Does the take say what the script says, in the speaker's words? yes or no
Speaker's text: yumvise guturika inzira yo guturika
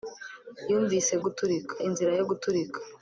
yes